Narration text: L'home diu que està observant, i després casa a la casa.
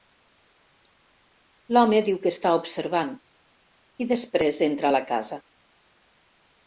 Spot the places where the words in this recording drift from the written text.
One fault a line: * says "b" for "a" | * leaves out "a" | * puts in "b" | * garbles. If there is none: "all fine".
* says "entra" for "casa"